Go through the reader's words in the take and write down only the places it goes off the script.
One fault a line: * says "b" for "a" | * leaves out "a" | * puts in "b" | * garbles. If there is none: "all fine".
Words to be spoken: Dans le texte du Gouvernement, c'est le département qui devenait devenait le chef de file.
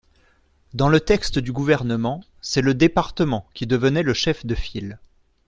* leaves out "devenait"